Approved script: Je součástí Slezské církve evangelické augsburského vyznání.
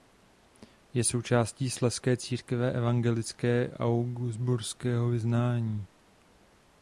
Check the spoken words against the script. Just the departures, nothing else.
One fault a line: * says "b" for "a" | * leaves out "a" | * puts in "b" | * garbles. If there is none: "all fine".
all fine